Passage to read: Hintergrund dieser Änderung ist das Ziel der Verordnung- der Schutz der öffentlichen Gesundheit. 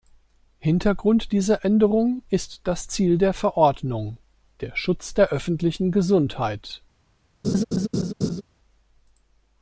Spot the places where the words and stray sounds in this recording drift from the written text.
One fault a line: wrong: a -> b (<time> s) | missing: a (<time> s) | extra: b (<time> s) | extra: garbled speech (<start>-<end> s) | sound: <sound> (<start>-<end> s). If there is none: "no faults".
sound: laugh (7.4-8.4 s)